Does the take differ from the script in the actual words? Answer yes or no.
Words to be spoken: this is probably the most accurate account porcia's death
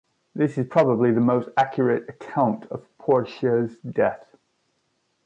yes